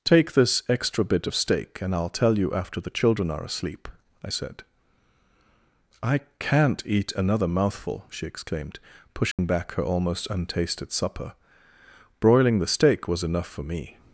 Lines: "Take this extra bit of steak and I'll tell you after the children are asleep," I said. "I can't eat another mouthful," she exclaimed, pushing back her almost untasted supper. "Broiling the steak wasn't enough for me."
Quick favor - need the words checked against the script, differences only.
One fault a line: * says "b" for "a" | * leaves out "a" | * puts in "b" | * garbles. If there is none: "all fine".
* says "was" for "wasn't"